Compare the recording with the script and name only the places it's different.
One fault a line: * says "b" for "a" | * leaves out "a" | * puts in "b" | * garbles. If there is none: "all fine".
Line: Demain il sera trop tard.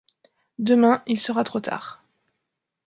all fine